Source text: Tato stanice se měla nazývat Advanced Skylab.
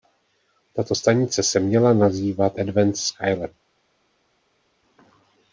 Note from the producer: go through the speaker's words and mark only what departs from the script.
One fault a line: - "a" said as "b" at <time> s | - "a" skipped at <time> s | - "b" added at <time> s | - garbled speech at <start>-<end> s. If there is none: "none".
none